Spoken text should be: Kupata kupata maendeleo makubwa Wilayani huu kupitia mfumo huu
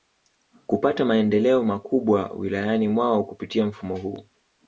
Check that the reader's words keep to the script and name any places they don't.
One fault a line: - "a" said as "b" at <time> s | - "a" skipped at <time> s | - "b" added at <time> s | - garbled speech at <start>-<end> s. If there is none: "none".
- "kupata" skipped at 1.1 s
- "huu" said as "mwao" at 2.9 s